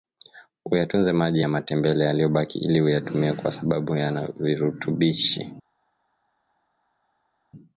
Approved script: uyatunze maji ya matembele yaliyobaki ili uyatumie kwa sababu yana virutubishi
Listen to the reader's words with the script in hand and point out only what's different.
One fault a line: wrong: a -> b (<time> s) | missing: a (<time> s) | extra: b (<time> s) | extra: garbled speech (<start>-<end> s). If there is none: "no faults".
no faults